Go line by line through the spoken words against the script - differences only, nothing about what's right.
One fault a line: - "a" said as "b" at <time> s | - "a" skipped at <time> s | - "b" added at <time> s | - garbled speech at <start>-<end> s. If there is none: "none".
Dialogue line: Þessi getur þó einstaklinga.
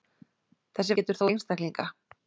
none